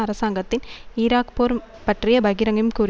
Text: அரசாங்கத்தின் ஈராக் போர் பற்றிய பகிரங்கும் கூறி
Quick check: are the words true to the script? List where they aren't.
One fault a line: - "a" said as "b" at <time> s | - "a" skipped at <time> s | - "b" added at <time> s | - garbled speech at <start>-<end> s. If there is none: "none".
none